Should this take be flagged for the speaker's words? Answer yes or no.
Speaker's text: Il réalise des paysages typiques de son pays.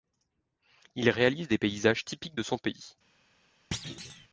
no